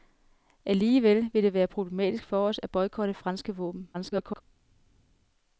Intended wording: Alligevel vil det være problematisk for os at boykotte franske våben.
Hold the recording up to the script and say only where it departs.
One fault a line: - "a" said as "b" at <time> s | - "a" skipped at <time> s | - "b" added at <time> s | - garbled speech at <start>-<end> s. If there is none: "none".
- garbled speech at 3.9-4.4 s